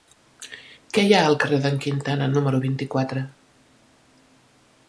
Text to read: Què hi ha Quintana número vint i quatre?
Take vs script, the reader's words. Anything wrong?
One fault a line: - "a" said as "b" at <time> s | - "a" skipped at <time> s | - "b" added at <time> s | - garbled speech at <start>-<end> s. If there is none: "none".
- "al carrer d'en" added at 1.2 s